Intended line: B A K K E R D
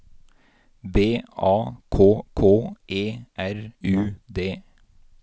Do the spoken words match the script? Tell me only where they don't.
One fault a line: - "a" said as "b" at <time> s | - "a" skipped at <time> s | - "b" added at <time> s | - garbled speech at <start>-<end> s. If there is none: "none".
- "U" added at 3.8 s